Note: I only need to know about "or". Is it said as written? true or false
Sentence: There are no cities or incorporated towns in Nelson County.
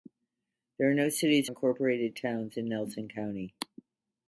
false